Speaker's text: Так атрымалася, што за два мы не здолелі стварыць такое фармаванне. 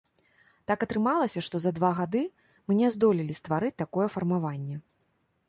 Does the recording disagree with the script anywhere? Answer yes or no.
yes